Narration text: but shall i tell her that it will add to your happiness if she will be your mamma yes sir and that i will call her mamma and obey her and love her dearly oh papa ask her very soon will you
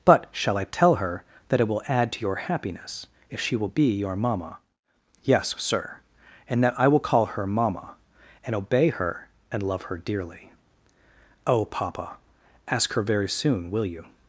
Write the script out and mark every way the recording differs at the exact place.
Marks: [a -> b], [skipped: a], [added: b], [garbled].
but shall i tell her that it will add to your happiness if she will be your mamma yes sir and that i will call her mamma and obey her and love her dearly oh papa ask her very soon will you